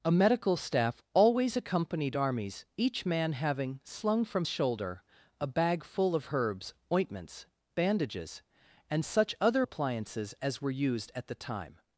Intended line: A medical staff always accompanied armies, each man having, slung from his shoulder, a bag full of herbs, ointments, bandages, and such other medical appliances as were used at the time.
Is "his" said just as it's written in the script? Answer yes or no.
no